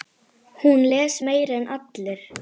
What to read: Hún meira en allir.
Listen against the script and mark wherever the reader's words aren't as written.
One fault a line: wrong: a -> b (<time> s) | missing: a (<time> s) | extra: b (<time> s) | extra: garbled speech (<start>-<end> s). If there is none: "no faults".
extra: les (0.9 s)